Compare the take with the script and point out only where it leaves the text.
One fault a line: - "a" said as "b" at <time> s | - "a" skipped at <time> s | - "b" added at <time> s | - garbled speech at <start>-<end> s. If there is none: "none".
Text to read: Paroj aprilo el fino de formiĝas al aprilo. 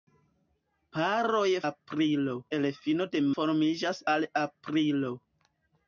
none